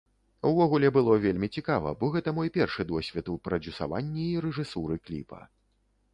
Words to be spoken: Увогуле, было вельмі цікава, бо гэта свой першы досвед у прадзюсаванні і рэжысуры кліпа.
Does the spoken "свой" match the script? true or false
false